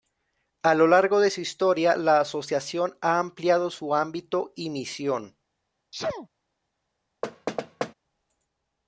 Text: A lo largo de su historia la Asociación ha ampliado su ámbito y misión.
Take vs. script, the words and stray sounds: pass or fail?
fail